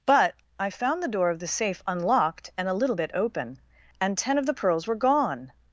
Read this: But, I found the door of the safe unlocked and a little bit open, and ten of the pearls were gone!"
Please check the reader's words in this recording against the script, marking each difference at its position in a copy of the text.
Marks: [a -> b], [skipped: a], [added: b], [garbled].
But, I found the door of the safe unlocked and a little bit open, and ten of the pearls were gone!"